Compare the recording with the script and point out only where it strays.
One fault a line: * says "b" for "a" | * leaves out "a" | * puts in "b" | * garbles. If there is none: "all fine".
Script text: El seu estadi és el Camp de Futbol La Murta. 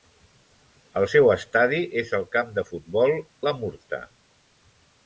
all fine